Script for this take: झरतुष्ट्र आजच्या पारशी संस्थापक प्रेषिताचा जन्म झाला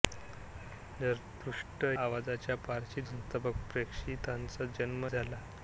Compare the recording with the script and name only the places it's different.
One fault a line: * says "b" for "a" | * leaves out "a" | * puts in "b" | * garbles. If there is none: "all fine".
all fine